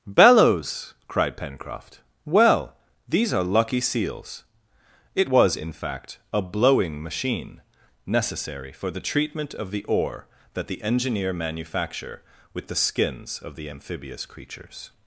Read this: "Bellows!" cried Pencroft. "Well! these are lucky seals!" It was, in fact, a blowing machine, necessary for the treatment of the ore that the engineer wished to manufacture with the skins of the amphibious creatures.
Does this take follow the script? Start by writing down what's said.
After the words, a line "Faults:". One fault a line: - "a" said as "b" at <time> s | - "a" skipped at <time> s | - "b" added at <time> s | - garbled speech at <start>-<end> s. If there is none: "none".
"Bellows!" cried Pencroft. "Well! these are lucky seals!" It was, in fact, a blowing machine, necessary for the treatment of the ore that the engineer manufacture with the skins of the amphibious creatures.
Faults:
- "wished to" skipped at 11.3 s